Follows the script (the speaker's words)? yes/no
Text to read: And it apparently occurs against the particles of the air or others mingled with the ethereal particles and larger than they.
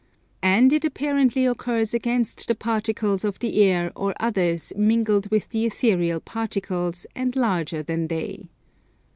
yes